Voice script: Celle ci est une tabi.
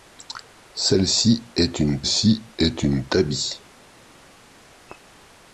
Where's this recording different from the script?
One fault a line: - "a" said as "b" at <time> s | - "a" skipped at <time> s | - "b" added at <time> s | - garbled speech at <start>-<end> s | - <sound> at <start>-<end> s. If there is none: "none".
- "ci est une" added at 2.0 s